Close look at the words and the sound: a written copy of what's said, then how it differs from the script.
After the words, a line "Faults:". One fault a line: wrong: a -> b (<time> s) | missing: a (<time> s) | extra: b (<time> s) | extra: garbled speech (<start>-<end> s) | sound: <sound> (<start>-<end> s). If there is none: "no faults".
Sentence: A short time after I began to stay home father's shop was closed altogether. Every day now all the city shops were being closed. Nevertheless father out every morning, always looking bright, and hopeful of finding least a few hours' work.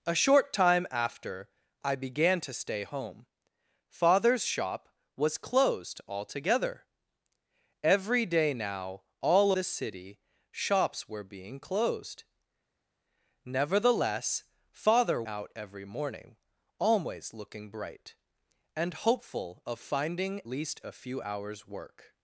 A short time after I began to stay home father's shop was closed altogether. Every day now all the city shops were being closed. Nevertheless father out every morning, always looking bright, and hopeful of finding least a few hours' work.
Faults:
no faults